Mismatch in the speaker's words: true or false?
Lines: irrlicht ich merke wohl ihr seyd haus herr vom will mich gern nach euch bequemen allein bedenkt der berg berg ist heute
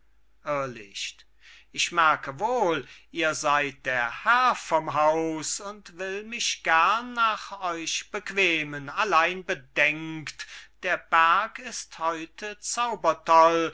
true